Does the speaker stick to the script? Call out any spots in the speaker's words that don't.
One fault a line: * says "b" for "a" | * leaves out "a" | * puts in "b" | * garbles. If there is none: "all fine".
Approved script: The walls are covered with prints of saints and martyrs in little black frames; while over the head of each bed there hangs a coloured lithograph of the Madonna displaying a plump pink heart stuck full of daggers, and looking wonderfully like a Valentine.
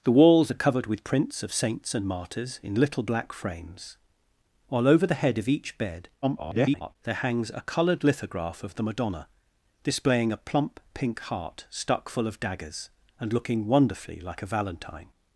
* garbles